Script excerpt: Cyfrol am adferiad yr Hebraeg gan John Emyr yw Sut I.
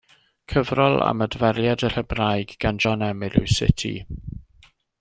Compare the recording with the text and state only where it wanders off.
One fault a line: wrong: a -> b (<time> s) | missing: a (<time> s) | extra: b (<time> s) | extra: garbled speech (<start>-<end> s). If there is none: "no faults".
no faults